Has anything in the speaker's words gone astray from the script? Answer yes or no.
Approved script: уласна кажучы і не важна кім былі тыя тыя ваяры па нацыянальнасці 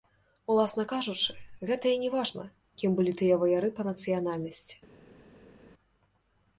yes